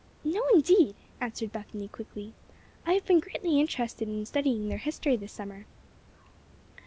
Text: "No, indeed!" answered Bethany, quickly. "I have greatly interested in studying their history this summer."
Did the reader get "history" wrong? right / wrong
right